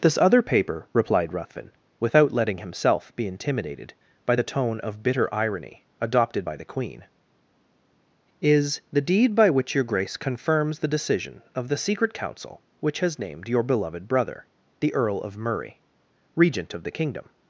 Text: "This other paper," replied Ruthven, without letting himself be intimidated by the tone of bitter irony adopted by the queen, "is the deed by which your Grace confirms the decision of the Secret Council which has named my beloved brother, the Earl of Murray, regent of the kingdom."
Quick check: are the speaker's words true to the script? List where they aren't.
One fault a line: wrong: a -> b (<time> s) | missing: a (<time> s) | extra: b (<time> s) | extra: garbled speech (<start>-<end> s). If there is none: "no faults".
wrong: my -> your (13.5 s)